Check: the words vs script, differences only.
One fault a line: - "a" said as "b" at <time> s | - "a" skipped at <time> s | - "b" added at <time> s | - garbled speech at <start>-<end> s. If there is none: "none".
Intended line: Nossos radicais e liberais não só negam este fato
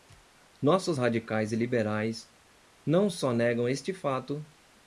none